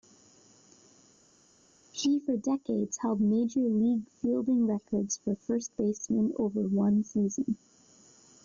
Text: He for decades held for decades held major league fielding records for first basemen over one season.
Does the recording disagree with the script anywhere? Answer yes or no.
yes